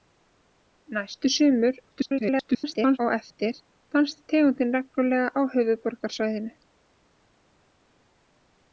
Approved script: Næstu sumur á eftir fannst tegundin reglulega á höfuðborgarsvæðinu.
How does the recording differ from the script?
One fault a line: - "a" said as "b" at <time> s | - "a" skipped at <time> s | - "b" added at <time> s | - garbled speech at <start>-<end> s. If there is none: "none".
- garbled speech at 1.9-3.0 s